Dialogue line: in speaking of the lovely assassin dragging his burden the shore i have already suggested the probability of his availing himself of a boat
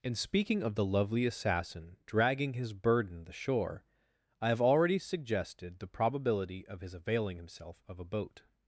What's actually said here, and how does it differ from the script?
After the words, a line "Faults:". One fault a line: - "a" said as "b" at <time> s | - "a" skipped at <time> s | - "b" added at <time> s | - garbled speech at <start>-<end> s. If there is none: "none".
in speaking of the lovely assassin dragging his burden the shore i have already suggested the probability of his availing himself of a boat
Faults:
none